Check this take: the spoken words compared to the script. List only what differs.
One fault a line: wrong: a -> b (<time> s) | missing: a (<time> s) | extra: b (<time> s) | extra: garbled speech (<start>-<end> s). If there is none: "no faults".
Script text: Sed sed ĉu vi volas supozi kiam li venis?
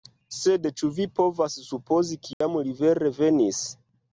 missing: sed (0.6 s)
wrong: volas -> povas (1.2 s)
extra: vere (2.8 s)